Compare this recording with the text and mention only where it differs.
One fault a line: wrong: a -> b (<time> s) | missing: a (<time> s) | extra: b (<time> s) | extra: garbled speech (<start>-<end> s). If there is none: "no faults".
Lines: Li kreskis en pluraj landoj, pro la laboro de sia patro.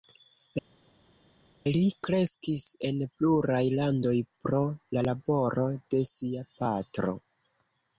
no faults